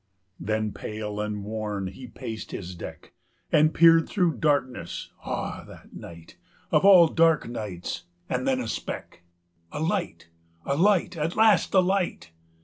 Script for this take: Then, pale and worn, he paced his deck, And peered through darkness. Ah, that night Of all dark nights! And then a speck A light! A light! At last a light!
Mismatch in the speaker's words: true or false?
false